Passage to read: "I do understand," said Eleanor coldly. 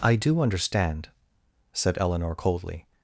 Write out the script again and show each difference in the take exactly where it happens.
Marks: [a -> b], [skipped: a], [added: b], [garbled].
"I do understand," said Eleanor coldly.